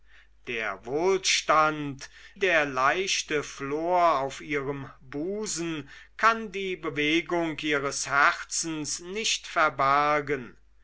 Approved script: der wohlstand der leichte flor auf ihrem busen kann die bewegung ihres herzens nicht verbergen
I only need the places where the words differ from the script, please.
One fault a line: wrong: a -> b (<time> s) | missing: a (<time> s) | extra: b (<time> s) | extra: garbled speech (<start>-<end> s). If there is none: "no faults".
no faults